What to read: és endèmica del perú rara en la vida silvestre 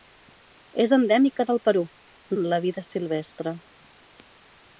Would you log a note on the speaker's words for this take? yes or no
yes